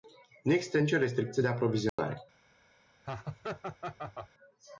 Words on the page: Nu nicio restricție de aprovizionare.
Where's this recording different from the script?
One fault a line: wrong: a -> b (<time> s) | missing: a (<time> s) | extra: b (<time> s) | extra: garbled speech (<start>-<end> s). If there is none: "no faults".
extra: există (0.5 s)